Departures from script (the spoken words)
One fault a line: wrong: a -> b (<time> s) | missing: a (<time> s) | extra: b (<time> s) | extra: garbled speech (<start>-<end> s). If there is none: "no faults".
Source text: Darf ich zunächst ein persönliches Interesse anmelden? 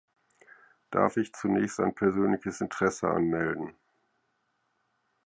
no faults